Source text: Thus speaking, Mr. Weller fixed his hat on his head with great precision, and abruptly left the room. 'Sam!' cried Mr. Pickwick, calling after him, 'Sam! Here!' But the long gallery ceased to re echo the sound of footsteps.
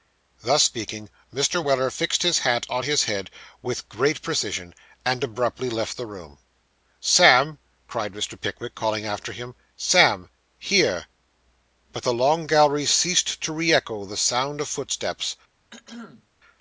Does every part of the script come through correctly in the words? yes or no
yes